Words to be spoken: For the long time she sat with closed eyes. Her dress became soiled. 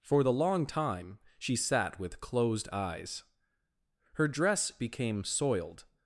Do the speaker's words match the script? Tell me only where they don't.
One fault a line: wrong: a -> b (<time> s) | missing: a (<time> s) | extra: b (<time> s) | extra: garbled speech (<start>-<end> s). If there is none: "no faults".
no faults